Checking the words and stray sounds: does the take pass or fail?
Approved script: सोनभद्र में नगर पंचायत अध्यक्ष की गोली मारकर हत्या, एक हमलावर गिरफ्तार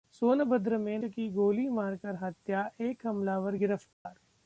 fail